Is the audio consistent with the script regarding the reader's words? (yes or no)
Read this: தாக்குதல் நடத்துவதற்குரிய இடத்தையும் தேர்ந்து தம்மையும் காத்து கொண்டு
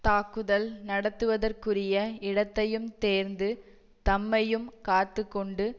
yes